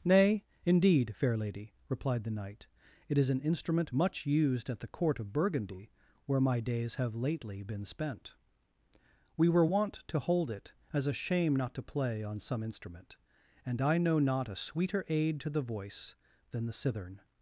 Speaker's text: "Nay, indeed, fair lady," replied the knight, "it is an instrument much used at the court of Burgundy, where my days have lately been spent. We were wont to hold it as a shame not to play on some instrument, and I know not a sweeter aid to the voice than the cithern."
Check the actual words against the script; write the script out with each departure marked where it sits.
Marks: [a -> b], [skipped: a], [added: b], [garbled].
"Nay, indeed, fair lady," replied the knight, "it is an instrument much used at the court of Burgundy, where my days have lately been spent. We were wont to hold it as a shame not to play on some instrument, and I know not a sweeter aid to the voice than the cithern."